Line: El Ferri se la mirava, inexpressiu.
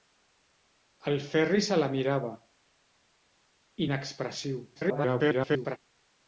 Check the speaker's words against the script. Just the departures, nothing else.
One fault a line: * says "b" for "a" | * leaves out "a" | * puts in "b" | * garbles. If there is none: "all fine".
* garbles